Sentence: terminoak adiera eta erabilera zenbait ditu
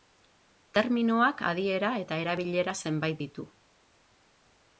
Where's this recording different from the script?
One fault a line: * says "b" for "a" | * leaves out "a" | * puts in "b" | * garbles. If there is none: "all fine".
all fine